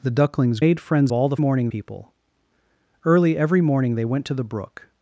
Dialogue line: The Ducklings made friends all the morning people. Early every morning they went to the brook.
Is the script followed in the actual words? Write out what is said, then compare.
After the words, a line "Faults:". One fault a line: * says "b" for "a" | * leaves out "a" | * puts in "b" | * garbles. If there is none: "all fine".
The Ducklings made friends all the morning people. Early every morning they went to the brook.
Faults:
all fine